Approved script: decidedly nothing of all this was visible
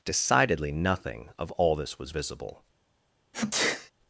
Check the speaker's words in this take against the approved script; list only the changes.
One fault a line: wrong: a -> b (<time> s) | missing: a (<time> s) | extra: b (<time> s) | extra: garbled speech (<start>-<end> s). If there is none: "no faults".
no faults